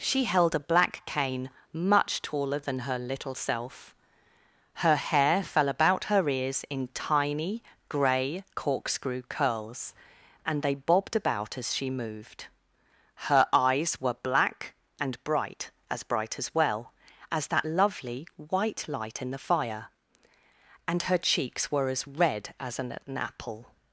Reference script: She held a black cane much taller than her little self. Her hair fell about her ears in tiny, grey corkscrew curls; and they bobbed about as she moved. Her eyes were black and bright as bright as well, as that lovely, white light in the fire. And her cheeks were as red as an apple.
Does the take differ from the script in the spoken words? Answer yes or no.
yes